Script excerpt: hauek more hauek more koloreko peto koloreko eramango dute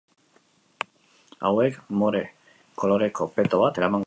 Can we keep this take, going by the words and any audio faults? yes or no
no